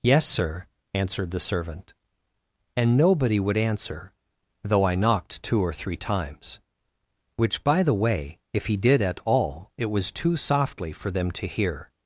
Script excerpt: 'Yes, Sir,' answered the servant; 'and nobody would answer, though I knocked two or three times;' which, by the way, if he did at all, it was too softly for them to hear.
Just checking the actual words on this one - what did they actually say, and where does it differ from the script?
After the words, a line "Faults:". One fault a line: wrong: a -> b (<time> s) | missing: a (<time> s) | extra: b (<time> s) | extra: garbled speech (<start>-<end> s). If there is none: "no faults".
'Yes, Sir,' answered the servant; 'and nobody would answer, though I knocked two or three times;' which, by the way, if he did at all, it was too softly for them to hear.
Faults:
no faults